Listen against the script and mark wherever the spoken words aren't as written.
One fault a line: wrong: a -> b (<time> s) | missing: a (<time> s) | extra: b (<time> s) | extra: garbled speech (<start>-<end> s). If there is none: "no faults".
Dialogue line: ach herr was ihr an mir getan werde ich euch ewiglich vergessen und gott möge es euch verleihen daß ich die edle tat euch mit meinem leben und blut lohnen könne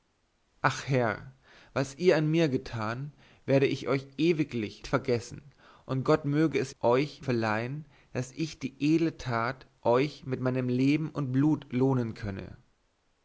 no faults